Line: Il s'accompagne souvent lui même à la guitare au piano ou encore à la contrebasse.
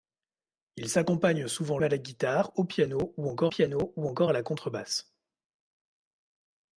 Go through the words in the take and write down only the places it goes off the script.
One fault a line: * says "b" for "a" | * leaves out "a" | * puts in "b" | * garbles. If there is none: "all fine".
* leaves out "lui même"
* puts in "piano ou encore"